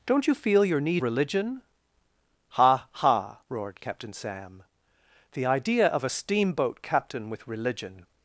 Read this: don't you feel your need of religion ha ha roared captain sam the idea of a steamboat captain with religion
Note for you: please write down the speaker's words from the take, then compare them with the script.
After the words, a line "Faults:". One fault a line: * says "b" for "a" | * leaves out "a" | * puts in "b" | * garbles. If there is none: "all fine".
don't you feel your need religion ha ha roared captain sam the idea of a steamboat captain with religion
Faults:
* leaves out "of"